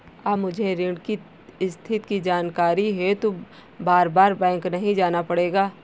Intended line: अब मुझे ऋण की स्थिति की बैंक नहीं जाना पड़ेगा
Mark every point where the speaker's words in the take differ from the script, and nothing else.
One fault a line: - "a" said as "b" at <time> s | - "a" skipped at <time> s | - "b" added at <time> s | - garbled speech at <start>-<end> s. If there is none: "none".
- "जानकारी हेतु बारबार" added at 2.2 s